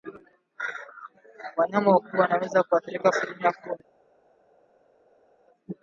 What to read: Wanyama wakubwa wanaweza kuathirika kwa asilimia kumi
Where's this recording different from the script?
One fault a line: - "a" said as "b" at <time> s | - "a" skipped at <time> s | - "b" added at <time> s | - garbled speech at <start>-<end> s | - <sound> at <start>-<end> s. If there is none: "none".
- "kwa" skipped at 3.1 s